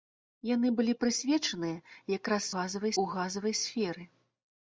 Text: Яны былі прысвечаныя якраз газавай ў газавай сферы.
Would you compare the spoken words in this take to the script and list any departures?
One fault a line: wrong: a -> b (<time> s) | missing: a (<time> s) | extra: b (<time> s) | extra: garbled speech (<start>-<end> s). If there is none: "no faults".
no faults